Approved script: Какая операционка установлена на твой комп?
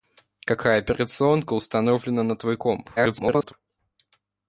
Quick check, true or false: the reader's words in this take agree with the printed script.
false